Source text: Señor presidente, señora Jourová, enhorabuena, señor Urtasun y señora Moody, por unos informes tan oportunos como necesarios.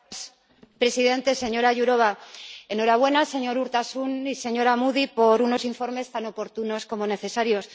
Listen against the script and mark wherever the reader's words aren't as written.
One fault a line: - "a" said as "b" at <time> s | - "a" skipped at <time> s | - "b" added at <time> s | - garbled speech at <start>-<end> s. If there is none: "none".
none